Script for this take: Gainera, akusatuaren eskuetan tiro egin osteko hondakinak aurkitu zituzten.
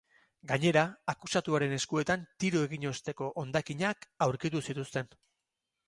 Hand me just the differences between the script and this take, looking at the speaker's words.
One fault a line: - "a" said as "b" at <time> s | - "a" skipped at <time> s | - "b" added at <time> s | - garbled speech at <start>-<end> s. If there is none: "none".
none